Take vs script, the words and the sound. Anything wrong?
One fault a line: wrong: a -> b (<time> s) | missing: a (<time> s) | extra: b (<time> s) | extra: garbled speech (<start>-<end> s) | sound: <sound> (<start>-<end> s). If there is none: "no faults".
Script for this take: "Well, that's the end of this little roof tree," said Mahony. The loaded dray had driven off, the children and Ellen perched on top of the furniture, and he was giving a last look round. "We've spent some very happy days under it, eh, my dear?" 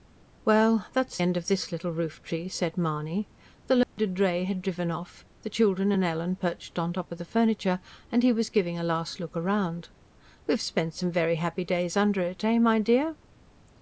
missing: the (1.2 s)
sound: dropout (3.8-4.0 s)